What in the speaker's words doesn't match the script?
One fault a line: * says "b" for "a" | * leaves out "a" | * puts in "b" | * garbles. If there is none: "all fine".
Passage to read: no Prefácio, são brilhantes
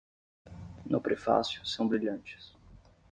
all fine